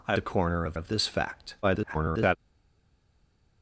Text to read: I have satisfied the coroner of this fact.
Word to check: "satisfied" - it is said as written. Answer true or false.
false